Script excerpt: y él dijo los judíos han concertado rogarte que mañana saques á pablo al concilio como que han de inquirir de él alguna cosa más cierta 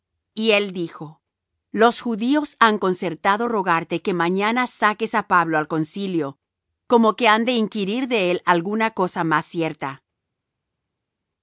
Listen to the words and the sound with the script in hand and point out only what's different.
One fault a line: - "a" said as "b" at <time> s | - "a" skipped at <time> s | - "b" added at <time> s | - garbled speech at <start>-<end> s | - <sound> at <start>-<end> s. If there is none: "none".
none